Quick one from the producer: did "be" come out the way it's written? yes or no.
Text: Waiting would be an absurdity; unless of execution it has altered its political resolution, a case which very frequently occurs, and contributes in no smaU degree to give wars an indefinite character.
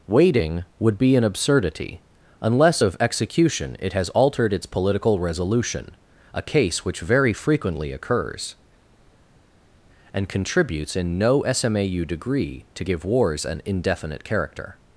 yes